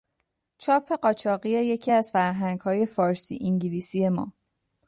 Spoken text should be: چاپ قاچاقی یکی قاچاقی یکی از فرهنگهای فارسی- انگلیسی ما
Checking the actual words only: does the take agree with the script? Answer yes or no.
no